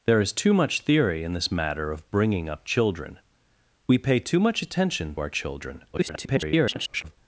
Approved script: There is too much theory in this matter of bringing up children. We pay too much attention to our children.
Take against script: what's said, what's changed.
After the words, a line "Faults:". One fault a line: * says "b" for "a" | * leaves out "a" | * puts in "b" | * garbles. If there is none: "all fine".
There is too much theory in this matter of bringing up children. We pay too much attention our children. [garbled]
Faults:
* leaves out "to"
* garbles